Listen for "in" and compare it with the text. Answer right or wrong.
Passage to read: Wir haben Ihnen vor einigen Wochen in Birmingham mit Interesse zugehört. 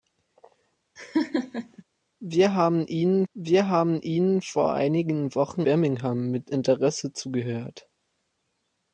wrong